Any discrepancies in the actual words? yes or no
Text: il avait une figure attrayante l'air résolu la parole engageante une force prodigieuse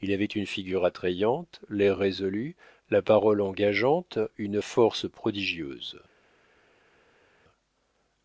no